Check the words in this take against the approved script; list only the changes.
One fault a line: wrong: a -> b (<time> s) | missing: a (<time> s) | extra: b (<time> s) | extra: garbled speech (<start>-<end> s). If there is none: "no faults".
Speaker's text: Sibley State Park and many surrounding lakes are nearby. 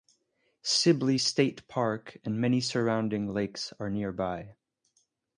no faults